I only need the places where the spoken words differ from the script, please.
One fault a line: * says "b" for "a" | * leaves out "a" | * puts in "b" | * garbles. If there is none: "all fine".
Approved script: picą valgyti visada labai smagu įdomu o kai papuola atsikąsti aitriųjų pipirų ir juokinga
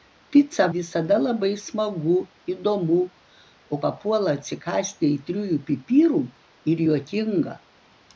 * leaves out "valgyti"
* leaves out "kai"